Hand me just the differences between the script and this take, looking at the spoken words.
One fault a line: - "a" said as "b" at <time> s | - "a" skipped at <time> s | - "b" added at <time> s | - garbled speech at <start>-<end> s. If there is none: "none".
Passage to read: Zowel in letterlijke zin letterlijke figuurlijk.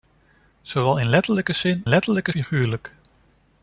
none